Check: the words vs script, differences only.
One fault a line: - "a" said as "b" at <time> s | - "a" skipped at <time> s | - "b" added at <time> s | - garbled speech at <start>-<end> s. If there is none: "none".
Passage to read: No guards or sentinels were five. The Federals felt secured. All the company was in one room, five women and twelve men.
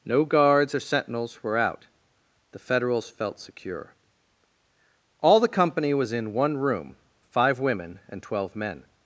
- "five" said as "out" at 1.6 s
- "secured" said as "secure" at 3.4 s